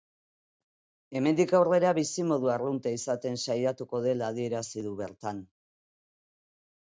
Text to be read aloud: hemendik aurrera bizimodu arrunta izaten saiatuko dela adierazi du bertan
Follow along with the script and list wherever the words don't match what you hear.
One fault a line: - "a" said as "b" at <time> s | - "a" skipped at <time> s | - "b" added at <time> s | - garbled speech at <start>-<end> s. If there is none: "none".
none